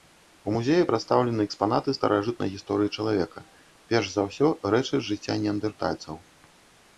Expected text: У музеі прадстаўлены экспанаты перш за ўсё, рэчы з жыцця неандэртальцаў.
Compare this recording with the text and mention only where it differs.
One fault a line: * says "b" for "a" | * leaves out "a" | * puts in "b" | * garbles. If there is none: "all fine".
* puts in "старажытнай гісторыі чалавека"